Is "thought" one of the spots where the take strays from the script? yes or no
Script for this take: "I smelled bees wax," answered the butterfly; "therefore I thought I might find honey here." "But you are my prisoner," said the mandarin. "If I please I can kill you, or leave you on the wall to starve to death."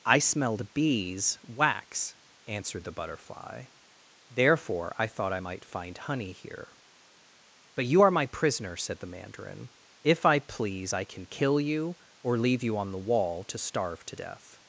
no